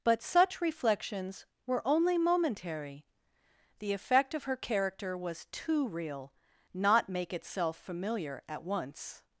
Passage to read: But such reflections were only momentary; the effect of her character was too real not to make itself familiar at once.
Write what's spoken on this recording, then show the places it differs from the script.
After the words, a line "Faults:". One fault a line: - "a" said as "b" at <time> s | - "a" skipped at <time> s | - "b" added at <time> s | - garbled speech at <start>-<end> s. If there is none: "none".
But such reflections were only momentary; the effect of her character was too real not make itself familiar at once.
Faults:
- "to" skipped at 7.1 s